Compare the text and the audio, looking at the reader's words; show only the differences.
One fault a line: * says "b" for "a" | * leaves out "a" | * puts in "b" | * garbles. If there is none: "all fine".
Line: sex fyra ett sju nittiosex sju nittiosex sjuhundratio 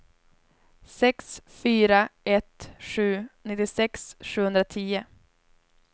* leaves out "sju nittiosex"